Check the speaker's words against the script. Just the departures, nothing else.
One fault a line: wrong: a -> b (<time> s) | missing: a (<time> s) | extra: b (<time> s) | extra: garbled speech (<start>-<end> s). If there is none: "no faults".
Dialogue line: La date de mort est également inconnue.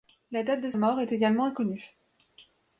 no faults